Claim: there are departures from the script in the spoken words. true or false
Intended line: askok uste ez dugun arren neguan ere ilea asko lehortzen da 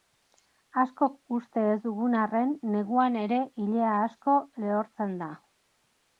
false